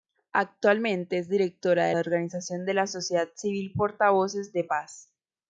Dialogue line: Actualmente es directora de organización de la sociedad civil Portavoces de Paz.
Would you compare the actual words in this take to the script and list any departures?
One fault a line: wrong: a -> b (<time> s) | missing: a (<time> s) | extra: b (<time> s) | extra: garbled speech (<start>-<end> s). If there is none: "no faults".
no faults